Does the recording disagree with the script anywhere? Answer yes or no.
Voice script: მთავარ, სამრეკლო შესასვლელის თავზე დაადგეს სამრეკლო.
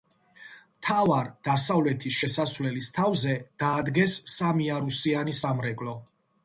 yes